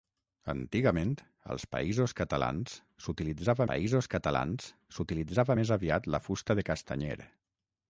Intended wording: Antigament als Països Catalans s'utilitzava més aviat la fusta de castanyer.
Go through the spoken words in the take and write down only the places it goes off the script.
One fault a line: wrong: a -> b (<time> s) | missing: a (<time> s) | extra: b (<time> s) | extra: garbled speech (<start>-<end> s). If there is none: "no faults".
extra: Països Catalans s'utilitzava (3.7 s)